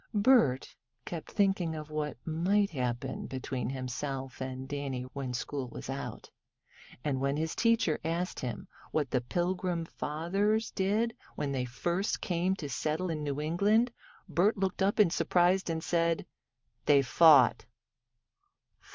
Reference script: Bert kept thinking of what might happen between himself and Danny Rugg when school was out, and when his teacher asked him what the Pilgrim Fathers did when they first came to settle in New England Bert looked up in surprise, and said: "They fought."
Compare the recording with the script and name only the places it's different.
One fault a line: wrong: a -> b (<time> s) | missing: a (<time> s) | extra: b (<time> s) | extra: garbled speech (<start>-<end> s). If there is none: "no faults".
missing: Rugg (5.0 s)